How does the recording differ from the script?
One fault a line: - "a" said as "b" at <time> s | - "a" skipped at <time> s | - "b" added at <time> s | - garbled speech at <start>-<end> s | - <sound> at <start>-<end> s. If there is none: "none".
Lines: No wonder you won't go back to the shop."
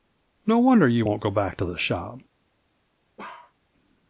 - bark at 3.2-3.5 s